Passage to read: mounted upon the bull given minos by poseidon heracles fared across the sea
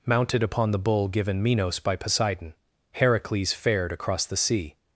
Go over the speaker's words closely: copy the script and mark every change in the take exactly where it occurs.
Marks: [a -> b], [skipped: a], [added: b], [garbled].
mounted upon the bull given minos by poseidon heracles fared across the sea